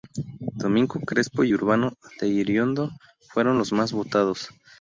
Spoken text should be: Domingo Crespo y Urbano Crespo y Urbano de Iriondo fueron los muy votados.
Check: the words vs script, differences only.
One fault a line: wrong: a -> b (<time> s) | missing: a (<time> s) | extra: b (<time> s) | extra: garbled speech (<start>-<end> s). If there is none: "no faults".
missing: Crespo y Urbano (1.9 s)
wrong: muy -> más (3.7 s)